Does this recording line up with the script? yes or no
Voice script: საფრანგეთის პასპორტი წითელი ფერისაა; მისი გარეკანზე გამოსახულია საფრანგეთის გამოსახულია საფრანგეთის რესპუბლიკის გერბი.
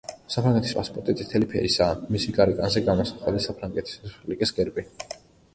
no